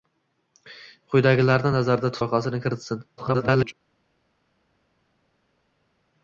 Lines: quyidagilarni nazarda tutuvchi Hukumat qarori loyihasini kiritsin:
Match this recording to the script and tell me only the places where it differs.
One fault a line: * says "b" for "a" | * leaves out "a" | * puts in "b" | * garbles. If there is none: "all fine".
* leaves out "tutuvchi Hukumat qarori"
* garbles